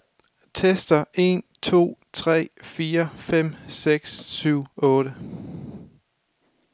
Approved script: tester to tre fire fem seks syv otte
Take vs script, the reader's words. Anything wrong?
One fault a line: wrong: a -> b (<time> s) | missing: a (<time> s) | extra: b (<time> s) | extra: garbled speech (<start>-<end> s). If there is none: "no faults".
extra: en (1.2 s)